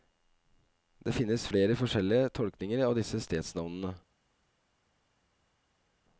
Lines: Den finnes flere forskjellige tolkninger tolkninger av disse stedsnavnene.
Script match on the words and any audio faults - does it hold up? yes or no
no